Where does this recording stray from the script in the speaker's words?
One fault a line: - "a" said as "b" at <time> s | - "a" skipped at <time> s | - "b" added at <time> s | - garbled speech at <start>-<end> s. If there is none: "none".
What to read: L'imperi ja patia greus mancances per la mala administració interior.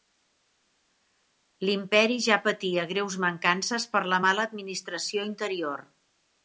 none